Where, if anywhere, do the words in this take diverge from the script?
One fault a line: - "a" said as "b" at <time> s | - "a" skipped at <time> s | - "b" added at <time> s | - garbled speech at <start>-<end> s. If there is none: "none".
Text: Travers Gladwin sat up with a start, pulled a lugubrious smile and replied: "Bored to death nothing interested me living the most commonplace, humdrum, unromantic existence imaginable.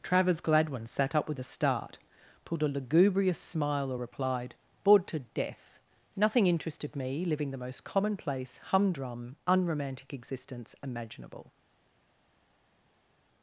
- "and" said as "or" at 3.9 s